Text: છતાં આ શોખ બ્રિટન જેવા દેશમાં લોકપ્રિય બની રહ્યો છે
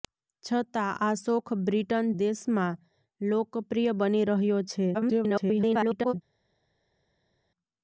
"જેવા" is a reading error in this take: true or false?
true